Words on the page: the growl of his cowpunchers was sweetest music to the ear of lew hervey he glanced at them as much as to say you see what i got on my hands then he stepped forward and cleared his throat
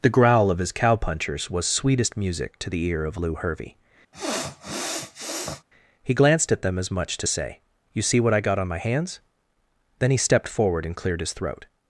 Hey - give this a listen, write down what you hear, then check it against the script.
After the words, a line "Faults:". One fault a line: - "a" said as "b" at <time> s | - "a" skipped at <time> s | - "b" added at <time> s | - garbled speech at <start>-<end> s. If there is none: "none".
the growl of his cowpunchers was sweetest music to the ear of lew hervey he glanced at them as much to say you see what i got on my hands then he stepped forward and cleared his throat
Faults:
- "as" skipped at 7.2 s